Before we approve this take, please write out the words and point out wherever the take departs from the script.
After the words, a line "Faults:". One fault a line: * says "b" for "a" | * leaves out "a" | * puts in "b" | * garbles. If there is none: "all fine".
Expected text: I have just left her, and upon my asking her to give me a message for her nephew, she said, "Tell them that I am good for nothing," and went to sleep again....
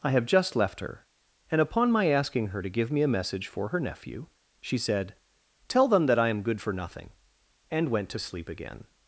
I have just left her, and upon my asking her to give me a message for her nephew, she said, "Tell them that I am good for nothing," and went to sleep again....
Faults:
all fine